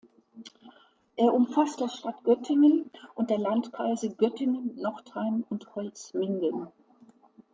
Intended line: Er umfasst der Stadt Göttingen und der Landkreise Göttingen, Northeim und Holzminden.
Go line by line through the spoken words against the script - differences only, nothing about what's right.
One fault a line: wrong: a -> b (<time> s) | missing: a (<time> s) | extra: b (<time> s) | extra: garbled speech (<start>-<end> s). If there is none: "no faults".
no faults